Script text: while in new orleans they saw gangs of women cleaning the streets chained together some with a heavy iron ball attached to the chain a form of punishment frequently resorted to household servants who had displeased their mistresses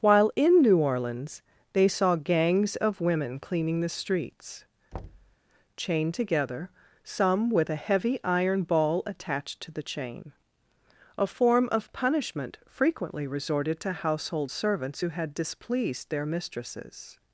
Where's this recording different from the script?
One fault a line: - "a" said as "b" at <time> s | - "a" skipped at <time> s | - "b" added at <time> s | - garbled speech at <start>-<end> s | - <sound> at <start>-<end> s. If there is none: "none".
- thud at 4.9-5.4 s